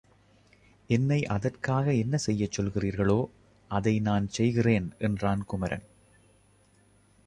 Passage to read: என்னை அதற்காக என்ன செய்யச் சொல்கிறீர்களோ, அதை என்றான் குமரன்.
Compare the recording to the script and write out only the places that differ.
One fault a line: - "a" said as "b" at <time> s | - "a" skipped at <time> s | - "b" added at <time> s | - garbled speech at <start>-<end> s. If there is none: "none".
- "நான் செய்கிறேன்" added at 4.0 s